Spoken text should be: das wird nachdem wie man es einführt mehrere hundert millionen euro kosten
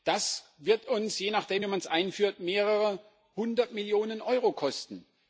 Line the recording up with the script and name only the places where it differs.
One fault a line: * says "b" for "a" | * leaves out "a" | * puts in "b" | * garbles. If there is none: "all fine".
* puts in "uns je"